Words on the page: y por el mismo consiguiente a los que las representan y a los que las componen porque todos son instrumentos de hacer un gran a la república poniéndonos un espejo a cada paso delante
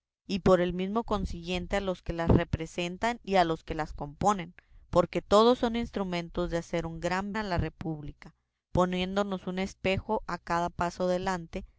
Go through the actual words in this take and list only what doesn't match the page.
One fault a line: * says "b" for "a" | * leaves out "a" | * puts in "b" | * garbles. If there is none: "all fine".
all fine